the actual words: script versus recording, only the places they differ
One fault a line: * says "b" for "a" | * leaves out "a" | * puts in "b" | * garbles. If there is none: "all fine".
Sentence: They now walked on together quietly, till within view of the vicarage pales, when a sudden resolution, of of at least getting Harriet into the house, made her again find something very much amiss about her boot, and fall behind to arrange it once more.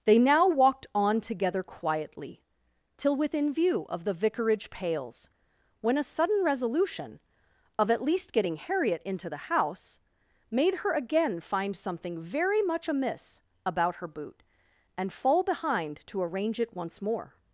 * leaves out "of"